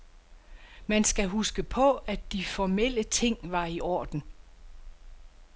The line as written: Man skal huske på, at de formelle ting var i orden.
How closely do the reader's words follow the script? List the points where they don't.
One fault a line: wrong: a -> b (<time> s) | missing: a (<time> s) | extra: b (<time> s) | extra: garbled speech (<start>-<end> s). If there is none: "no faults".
no faults